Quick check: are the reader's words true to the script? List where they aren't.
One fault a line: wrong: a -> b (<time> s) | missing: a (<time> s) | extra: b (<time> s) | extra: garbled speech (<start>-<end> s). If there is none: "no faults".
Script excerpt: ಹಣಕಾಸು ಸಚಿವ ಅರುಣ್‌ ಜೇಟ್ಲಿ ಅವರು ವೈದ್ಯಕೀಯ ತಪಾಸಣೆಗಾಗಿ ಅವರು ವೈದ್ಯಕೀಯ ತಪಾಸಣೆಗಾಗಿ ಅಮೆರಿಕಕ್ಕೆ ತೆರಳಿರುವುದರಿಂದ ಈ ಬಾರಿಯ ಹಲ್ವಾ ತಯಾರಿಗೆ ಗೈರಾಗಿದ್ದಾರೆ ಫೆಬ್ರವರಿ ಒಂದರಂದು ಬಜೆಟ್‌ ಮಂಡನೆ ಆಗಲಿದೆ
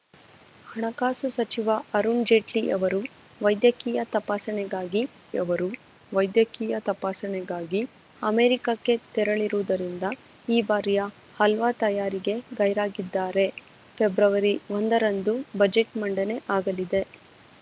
no faults